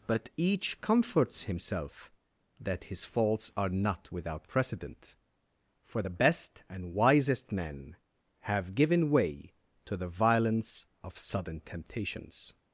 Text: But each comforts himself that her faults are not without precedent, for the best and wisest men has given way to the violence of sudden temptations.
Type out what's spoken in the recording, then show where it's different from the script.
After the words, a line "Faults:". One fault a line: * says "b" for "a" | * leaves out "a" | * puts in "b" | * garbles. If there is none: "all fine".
But each comforts himself that his faults are not without precedent, for the best and wisest men have given way to the violence of sudden temptations.
Faults:
* says "his" for "her"
* says "have" for "has"